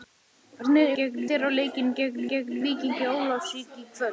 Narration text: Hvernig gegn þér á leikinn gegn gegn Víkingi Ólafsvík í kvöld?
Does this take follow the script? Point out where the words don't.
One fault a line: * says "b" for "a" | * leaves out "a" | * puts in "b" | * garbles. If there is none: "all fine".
all fine